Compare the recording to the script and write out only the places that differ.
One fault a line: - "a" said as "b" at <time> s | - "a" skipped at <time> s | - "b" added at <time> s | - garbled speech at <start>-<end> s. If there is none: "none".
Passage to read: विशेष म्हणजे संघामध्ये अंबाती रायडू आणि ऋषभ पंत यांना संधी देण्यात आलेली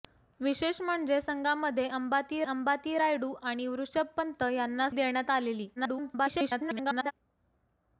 - "अंबाती" added at 2.4 s
- "संधी" skipped at 4.9 s
- garbled speech at 5.8-7.1 s